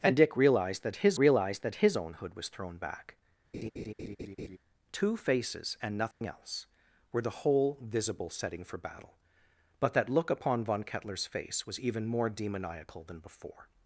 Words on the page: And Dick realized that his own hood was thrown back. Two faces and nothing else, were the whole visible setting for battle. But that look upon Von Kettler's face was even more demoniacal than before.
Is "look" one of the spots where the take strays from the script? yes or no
no